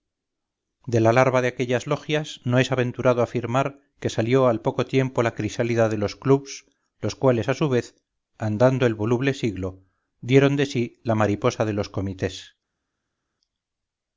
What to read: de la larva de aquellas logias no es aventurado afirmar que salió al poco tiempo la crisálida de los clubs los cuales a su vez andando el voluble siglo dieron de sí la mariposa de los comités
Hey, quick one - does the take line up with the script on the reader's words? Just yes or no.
yes